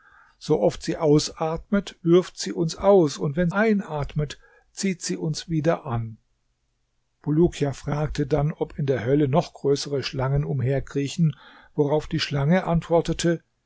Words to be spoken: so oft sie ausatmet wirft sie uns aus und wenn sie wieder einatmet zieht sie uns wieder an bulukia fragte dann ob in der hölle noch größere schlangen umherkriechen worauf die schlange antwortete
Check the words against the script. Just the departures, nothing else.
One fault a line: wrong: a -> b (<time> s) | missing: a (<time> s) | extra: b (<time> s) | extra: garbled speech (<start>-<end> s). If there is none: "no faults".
missing: sie wieder (3.5 s)